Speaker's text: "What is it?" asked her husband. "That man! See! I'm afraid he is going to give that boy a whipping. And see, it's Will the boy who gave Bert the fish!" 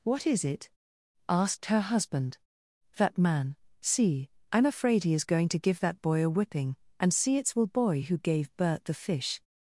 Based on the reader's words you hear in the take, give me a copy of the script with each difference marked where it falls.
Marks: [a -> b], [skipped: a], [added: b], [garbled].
"What is it?" asked her husband. "That man! See! I'm afraid he is going to give that boy a whipping. And see, it's Will [skipped: the] boy who gave Bert the fish!"